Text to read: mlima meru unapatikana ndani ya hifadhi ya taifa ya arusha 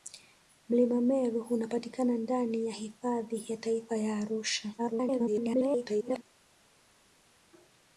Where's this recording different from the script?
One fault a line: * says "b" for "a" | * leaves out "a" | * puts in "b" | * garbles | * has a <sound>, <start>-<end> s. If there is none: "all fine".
* garbles